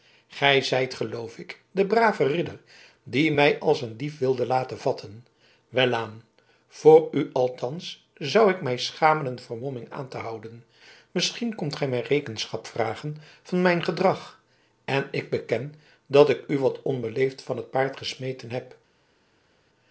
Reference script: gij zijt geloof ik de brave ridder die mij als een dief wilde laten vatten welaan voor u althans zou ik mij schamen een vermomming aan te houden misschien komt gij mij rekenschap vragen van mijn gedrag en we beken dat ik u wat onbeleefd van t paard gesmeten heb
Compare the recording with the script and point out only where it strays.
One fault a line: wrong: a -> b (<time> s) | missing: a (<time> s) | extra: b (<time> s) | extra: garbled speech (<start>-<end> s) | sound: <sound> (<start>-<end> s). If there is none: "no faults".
wrong: we -> ik (15.1 s)